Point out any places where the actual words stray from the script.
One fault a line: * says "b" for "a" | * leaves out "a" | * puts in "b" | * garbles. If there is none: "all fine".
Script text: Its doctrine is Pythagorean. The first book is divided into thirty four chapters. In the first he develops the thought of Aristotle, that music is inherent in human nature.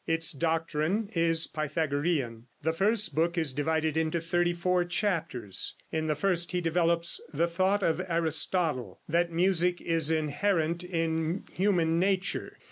all fine